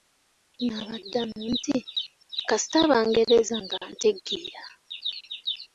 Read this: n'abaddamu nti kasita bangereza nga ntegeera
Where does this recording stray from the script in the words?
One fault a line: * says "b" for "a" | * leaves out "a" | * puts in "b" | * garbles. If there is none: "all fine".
all fine